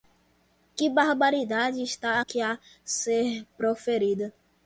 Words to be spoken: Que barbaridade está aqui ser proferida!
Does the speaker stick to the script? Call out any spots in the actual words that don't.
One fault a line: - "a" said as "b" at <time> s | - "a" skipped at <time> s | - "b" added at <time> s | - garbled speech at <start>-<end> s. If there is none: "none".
- "a" added at 2.4 s